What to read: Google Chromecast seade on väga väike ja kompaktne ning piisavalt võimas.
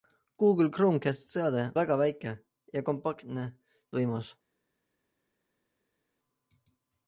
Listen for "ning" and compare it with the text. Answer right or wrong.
wrong